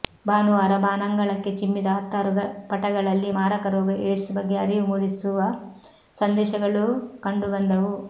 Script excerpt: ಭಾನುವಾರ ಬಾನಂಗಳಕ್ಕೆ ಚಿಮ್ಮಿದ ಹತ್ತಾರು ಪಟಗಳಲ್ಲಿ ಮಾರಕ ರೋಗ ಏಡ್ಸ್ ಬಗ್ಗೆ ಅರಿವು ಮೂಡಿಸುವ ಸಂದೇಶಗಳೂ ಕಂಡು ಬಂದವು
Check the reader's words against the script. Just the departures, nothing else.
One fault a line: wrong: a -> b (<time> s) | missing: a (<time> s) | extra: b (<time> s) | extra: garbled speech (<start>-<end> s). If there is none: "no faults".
no faults